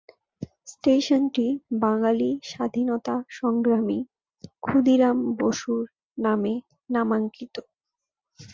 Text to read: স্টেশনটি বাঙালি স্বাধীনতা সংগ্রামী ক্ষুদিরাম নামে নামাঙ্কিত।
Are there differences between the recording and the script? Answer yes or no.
yes